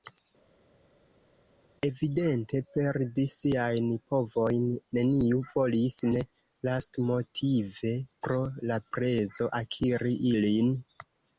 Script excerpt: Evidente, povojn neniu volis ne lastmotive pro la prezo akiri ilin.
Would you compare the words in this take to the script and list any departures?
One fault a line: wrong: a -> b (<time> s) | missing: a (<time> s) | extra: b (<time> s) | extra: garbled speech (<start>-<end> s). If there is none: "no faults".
extra: perdi siajn (2.8 s)